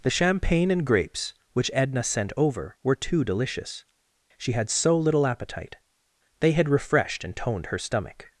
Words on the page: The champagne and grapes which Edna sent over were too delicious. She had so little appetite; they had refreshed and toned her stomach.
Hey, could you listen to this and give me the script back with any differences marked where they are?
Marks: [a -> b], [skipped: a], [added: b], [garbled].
The champagne and grapes which Edna sent over were too delicious. She had so little appetite; they had refreshed and toned her stomach.